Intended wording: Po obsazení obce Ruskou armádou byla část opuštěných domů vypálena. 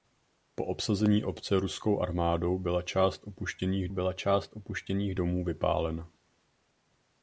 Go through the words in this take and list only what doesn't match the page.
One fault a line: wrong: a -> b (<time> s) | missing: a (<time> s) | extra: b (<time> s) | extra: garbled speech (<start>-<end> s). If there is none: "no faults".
extra: byla část opuštěných (3.9 s)